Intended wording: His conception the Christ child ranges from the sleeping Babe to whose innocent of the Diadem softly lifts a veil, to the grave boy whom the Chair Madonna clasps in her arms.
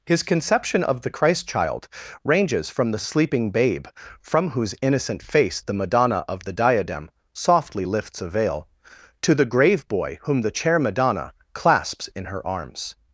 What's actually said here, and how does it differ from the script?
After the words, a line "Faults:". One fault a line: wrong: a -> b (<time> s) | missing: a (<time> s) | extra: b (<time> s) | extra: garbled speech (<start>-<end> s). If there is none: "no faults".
His conception of the Christ child ranges from the sleeping Babe from whose innocent face the Madonna of the Diadem softly lifts a veil, to the grave boy whom the Chair Madonna clasps in her arms.
Faults:
extra: of (0.8 s)
wrong: to -> from (4.2 s)
extra: face the Madonna (5.2 s)